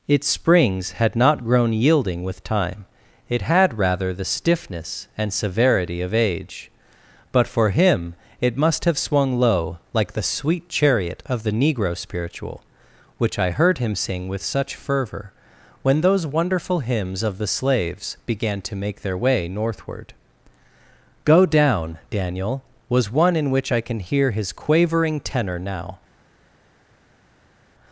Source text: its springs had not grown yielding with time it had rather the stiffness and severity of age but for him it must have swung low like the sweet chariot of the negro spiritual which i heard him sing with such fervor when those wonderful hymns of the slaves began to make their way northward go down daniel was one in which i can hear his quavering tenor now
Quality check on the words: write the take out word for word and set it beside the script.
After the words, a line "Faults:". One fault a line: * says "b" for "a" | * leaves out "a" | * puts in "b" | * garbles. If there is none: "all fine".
its springs had not grown yielding with time it had rather the stiffness and severity of age but for him it must have swung low like the sweet chariot of the negro spiritual which i heard him sing with such fervor when those wonderful hymns of the slaves began to make their way northward go down daniel was one in which i can hear his quavering tenor now
Faults:
all fine